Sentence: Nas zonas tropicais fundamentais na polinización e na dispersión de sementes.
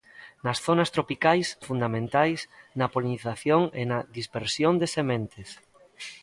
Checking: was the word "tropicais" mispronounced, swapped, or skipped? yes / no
no